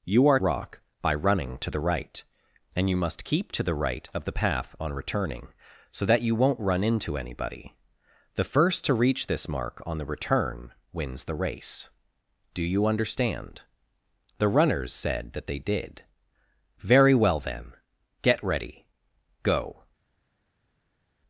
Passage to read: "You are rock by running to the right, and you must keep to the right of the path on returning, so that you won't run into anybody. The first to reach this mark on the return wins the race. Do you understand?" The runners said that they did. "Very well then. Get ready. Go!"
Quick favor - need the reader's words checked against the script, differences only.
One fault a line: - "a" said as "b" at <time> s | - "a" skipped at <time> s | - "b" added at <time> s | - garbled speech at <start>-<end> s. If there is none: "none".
none